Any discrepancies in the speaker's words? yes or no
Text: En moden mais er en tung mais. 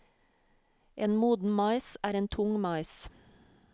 no